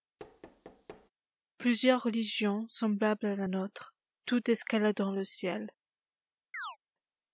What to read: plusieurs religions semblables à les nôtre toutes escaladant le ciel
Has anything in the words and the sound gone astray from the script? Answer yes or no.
yes